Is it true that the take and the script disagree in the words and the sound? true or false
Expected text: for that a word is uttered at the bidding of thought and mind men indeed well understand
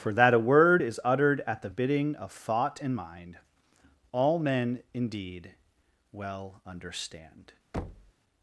true